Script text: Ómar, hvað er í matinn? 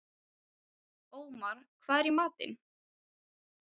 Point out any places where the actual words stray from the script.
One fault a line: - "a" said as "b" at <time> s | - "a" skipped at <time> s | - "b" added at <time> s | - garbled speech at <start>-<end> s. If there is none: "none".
none